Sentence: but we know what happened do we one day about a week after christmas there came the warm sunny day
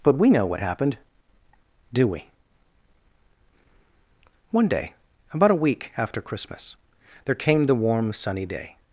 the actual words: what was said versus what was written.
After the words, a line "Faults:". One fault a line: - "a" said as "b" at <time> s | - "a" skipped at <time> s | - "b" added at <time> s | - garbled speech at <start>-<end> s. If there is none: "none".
but we know what happened do we one day about a week after christmas there came the warm sunny day
Faults:
none